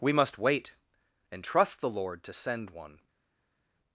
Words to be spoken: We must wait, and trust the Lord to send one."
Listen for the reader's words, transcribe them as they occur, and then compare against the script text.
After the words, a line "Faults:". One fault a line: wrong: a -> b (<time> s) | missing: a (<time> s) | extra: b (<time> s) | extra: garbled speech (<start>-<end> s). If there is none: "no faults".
We must wait, and trust the Lord to send one."
Faults:
no faults